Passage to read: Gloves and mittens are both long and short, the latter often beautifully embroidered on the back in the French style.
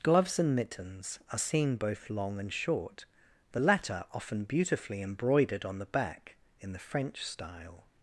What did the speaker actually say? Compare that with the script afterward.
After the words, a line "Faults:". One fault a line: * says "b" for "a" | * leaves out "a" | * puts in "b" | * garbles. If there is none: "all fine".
Gloves and mittens are seen both long and short, the latter often beautifully embroidered on the back in the French style.
Faults:
* puts in "seen"